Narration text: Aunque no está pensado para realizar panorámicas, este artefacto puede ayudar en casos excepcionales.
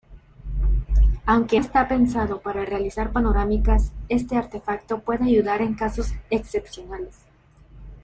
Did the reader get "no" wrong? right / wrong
wrong